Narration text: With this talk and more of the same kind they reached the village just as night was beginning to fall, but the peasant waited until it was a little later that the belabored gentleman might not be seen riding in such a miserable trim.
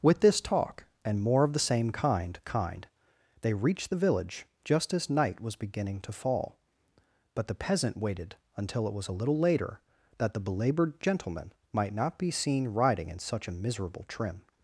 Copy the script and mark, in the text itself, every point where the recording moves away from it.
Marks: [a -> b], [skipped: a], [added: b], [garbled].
With this talk and more of the same kind [added: kind] they reached the village just as night was beginning to fall, but the peasant waited until it was a little later that the belabored gentleman might not be seen riding in such a miserable trim.